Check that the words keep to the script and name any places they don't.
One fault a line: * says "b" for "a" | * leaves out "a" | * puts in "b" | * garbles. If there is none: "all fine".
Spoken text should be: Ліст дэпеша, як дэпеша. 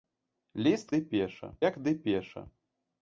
all fine